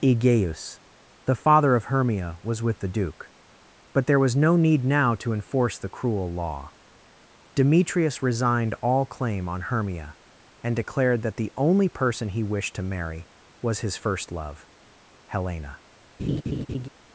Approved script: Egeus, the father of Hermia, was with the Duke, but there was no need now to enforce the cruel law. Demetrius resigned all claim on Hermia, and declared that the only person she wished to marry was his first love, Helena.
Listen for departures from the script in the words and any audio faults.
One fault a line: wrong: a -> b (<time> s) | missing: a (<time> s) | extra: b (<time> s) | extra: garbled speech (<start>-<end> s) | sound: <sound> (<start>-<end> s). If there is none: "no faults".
wrong: she -> he (12.3 s)
sound: laugh (16.2-16.9 s)